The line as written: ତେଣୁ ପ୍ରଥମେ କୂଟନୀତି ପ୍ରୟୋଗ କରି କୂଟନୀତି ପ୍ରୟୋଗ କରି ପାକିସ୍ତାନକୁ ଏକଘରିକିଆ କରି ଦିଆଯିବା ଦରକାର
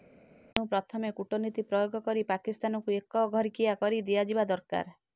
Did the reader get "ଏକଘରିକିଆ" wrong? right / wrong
right